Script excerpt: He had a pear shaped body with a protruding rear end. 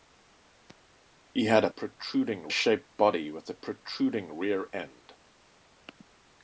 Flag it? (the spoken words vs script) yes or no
yes